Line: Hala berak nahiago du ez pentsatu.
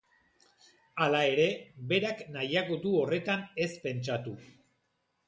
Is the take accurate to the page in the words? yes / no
no